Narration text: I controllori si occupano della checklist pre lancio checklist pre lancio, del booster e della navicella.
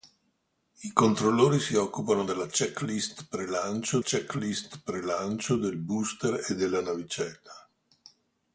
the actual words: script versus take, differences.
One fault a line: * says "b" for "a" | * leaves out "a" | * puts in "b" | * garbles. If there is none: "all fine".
all fine